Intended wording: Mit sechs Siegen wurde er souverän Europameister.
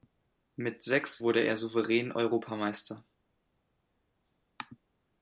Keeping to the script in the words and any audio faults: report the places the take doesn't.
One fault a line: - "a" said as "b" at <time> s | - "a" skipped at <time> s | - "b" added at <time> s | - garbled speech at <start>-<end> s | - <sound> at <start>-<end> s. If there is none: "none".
- "Siegen" skipped at 1.2 s